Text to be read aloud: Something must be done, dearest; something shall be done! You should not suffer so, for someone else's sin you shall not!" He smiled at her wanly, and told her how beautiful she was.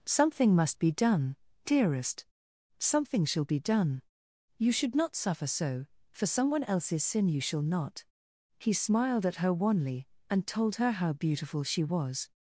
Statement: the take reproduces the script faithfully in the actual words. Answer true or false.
true